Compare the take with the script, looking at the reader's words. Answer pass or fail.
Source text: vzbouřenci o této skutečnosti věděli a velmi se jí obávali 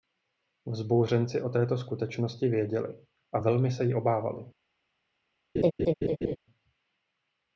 pass